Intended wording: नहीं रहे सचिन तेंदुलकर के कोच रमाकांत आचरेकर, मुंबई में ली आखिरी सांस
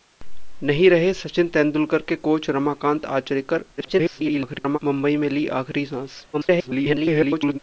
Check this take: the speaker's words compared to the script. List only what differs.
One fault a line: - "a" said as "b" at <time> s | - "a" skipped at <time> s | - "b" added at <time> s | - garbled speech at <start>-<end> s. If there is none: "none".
- garbled speech at 3.8-4.8 s
- garbled speech at 6.3-7.6 s